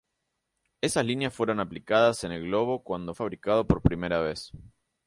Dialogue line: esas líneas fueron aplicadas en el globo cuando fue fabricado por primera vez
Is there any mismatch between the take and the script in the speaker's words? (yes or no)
yes